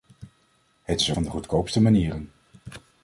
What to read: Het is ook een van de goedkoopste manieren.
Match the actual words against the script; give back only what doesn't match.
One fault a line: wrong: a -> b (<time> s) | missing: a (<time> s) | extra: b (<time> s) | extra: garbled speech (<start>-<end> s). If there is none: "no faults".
missing: ook een (1.1 s)